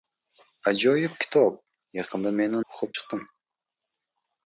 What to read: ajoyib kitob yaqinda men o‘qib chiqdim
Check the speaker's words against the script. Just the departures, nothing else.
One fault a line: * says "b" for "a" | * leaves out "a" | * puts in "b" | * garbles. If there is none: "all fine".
all fine